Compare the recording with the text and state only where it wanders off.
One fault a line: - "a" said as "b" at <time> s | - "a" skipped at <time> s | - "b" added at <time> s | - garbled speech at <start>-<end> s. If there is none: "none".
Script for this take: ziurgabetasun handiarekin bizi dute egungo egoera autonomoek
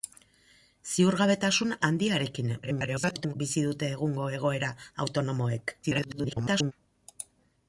- garbled speech at 2.6-3.3 s
- garbled speech at 5.8-6.7 s